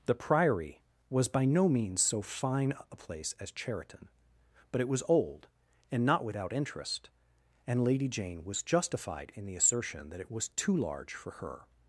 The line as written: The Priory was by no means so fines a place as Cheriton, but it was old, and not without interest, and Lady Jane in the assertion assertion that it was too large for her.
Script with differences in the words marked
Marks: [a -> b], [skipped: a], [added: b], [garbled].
The Priory was by no means so [fines -> fine] a place as Cheriton, but it was old, and not without interest, and Lady Jane [added: was justified] in the assertion [skipped: assertion] that it was too large for her.